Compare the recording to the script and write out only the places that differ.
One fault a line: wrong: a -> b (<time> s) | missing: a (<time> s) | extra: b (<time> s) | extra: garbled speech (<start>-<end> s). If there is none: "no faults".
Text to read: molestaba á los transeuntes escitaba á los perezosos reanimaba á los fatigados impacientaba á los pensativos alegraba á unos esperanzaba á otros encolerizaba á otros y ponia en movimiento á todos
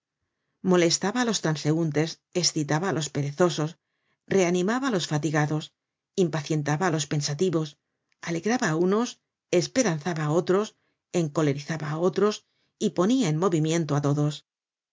no faults